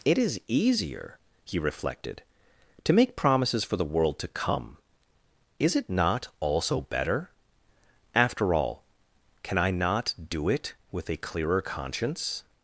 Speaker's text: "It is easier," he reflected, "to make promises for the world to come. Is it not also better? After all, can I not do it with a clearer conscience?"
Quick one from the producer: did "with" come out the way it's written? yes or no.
yes